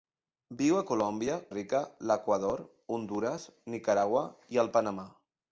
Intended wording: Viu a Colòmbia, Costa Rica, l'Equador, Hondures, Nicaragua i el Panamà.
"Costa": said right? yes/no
no